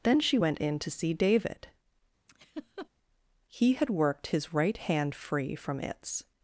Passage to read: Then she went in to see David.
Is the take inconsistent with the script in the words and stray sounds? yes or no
yes